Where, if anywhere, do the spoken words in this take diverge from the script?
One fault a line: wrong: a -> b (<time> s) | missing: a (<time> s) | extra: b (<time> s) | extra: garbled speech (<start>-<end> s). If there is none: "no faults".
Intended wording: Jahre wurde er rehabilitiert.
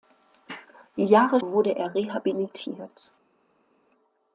no faults